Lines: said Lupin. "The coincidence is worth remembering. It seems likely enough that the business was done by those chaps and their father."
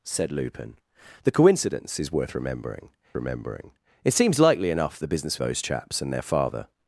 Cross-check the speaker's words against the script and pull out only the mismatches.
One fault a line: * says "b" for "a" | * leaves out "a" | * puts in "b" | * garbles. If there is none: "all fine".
* puts in "remembering"
* leaves out "that"
* leaves out "was done by"